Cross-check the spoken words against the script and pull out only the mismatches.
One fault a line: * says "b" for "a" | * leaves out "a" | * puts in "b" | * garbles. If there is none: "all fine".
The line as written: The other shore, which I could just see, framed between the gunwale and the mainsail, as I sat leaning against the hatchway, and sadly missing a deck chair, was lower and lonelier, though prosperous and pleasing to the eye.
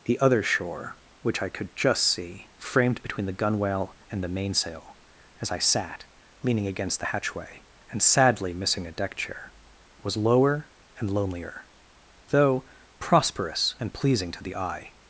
all fine